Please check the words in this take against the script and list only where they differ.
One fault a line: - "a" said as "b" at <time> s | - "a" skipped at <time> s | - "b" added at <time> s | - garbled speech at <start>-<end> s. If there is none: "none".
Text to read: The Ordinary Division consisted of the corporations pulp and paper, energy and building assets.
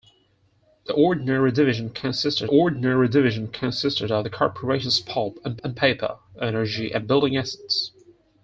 - "Ordinary Division consisted" added at 2.5 s
- "and" added at 5.6 s